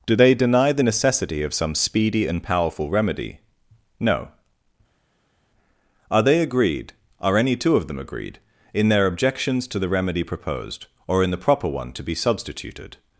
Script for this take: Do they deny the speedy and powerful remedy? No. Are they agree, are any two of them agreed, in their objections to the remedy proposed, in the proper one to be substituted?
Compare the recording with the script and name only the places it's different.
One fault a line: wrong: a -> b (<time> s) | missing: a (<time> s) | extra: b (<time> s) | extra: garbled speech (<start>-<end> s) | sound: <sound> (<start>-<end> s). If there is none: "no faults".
extra: necessity of some (0.8 s)
wrong: agree -> agreed (6.4 s)
extra: or (11.1 s)